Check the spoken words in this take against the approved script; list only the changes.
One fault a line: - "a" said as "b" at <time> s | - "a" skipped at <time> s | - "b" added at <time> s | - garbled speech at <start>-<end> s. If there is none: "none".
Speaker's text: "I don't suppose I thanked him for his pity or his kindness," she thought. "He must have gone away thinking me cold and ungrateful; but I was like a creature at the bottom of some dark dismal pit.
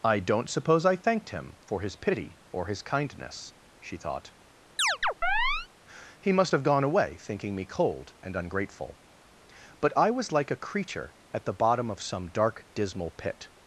none